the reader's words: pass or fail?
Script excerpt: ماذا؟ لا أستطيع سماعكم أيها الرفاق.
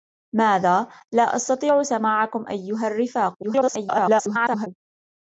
fail